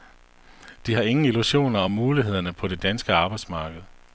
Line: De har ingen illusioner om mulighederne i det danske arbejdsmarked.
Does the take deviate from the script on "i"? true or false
true